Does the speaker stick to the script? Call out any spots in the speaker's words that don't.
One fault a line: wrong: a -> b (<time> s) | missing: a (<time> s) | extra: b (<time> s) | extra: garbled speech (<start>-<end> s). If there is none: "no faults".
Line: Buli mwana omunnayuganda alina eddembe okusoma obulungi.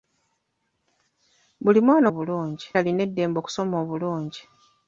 wrong: omunnayuganda -> obulungi (2.1 s)